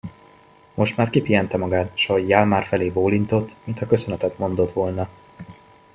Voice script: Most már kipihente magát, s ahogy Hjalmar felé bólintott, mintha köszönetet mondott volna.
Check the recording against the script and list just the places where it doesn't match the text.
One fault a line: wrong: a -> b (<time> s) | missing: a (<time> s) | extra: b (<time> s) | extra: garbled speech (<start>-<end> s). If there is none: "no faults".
no faults